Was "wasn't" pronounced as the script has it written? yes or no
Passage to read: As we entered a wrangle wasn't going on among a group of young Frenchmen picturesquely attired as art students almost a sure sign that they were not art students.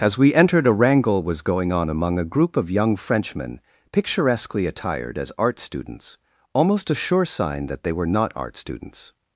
no